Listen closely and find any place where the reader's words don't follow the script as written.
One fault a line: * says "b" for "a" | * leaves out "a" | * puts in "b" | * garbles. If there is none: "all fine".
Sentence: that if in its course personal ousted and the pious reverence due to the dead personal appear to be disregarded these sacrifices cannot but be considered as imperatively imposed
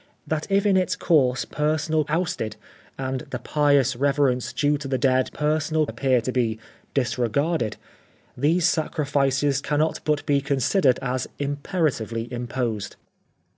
all fine